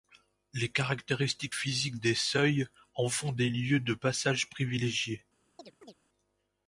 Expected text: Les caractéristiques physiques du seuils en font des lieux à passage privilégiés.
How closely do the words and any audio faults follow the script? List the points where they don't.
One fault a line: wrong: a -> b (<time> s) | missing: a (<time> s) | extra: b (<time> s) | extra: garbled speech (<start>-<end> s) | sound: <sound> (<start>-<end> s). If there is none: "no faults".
wrong: du -> des (2.0 s)
wrong: à -> de (3.8 s)
sound: chirp (5.6-5.9 s)